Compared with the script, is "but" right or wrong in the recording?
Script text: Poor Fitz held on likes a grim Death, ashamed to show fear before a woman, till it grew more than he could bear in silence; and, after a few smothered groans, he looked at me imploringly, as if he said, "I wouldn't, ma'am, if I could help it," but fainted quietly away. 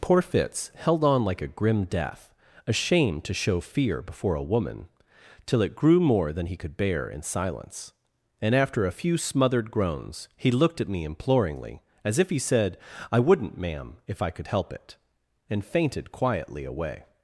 wrong